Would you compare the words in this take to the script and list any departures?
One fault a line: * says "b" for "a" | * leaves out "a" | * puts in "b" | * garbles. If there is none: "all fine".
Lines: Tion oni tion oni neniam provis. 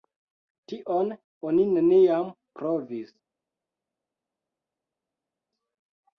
* leaves out "tion oni"